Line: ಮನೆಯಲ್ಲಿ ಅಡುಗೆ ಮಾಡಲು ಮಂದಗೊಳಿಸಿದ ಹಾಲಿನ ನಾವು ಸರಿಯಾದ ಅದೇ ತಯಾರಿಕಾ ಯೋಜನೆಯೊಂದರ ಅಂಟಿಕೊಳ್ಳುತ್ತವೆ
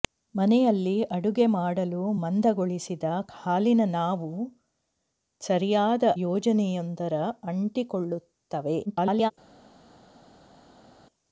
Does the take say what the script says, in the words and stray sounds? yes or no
no